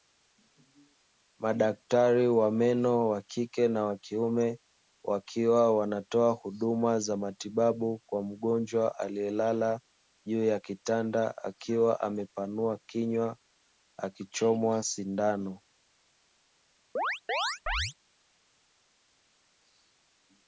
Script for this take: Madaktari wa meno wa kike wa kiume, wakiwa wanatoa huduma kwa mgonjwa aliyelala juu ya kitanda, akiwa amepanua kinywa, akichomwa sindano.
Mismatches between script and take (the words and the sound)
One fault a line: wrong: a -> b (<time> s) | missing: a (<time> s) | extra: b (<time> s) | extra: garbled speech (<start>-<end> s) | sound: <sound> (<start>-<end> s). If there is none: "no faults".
extra: na (3.7 s)
extra: za matibabu (7.0 s)
sound: chirp (17.0-17.9 s)